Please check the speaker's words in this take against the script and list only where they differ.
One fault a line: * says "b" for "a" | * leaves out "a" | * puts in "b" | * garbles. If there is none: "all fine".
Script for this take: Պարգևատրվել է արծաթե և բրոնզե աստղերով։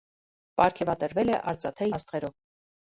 * leaves out "և բրոնզե"